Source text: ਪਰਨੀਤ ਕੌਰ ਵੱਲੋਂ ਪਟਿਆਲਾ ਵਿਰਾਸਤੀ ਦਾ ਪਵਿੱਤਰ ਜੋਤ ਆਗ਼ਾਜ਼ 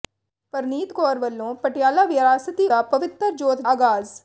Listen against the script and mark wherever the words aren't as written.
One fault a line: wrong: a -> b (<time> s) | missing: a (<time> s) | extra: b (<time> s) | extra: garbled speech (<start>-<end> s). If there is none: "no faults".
no faults